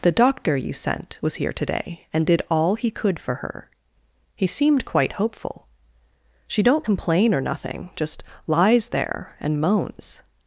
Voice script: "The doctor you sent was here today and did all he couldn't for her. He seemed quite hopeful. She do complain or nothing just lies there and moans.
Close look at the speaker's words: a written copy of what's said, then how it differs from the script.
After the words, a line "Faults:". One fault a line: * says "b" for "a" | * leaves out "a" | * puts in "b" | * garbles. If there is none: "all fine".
"The doctor you sent was here today and did all he could for her. He seemed quite hopeful. She don't complain or nothing just lies there and moans.
Faults:
* says "could" for "couldn't"
* says "don't" for "do"